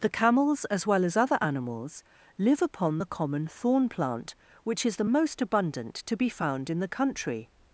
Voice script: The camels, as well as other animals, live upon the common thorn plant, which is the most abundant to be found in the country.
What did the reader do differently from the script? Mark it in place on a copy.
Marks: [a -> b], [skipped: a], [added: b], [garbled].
The camels, as well as other animals, live upon the common thorn plant, which is the most abundant to be found in the country.